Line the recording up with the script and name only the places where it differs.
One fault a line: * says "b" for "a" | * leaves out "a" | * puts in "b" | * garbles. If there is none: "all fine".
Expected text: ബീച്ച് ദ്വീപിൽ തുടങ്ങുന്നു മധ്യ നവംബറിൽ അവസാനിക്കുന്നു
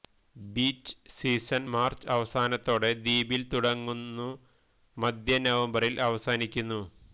* puts in "സീസൺ മാർച്ച് അവസാനത്തോടെ"